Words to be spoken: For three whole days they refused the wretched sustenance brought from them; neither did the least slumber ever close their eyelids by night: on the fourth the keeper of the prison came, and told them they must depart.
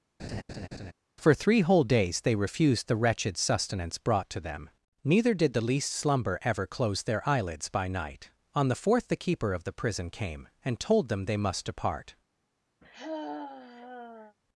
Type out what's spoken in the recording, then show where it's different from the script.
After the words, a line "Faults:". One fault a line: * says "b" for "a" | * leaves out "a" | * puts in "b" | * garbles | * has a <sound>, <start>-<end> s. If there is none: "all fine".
For three whole days they refused the wretched sustenance brought to them; neither did the least slumber ever close their eyelids by night: on the fourth the keeper of the prison came, and told them they must depart.
Faults:
* has a laugh, 0.2-0.9 s
* says "to" for "from"
* has a sigh, 12.8-14.4 s